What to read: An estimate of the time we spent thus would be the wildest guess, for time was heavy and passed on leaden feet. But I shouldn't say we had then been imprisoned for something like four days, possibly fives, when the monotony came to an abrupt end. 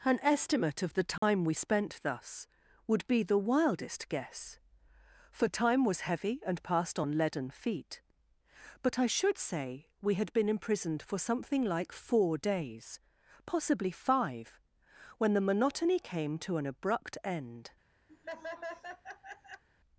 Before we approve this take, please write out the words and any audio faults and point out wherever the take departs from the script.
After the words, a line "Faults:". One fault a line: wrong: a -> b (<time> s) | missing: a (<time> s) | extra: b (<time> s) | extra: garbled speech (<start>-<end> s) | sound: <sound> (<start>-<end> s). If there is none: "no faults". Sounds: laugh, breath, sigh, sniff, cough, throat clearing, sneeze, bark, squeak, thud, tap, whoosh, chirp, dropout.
An estimate of the time we spent thus would be the wildest guess, for time was heavy and passed on leaden feet. But I should say we had been imprisoned for something like four days, possibly five, when the monotony came to an abrupt end.
Faults:
sound: dropout (1.2-1.2 s)
wrong: shouldn't -> should (9.1 s)
missing: then (10.3 s)
wrong: fives -> five (13.9 s)
sound: laugh (18.1-19.6 s)